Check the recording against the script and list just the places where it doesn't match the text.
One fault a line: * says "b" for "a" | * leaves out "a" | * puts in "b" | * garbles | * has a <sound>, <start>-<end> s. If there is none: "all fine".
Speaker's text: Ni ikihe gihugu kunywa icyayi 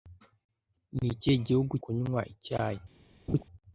* has a laugh, 3.3-3.4 s